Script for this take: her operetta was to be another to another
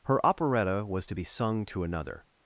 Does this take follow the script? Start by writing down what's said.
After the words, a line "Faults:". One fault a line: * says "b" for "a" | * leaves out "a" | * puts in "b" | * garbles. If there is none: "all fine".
her operetta was to be sung to another
Faults:
* says "sung" for "another"